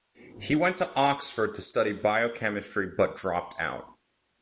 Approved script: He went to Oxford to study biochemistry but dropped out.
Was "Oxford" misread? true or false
false